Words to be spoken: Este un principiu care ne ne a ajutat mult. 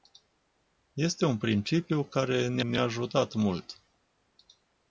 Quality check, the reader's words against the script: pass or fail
pass